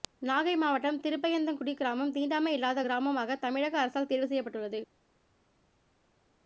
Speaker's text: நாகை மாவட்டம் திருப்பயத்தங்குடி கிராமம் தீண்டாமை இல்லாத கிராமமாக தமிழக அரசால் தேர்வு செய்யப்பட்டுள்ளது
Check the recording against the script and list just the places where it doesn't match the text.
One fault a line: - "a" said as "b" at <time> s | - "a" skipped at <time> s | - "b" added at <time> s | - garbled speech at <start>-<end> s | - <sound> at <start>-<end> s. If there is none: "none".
none